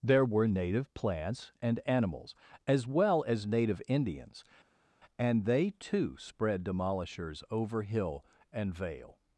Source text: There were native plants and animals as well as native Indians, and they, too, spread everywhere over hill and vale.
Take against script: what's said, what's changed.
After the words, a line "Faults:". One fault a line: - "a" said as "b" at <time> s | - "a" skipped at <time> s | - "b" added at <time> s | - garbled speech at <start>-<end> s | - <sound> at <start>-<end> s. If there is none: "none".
There were native plants and animals as well as native Indians, and they, too, spread demolishers over hill and vale.
Faults:
- "everywhere" said as "demolishers" at 6.6 s